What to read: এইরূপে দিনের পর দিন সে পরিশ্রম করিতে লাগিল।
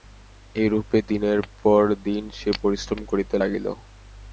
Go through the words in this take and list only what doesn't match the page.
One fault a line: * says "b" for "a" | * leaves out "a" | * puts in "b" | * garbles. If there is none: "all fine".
all fine